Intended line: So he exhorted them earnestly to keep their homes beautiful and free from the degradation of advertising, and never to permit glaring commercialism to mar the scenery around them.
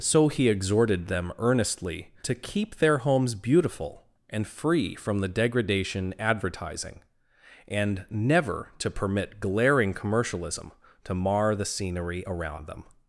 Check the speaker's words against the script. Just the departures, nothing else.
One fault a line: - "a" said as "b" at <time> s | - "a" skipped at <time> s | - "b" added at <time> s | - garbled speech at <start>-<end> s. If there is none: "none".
- "of" skipped at 6.2 s